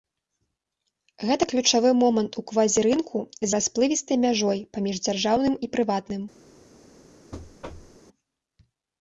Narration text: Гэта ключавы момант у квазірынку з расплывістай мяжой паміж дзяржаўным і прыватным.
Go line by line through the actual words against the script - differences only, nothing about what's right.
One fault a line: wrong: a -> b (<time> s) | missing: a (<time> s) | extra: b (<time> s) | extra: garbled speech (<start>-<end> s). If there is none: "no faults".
no faults